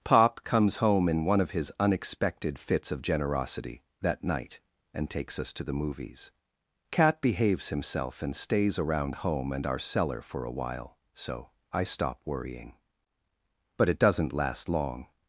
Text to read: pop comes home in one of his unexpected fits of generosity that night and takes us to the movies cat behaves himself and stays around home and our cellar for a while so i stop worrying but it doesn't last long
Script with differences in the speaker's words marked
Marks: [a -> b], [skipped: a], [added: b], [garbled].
pop comes home in one of his unexpected fits of generosity that night and takes us to the movies cat behaves himself and stays around home and our cellar for a while so i stop worrying but it doesn't last long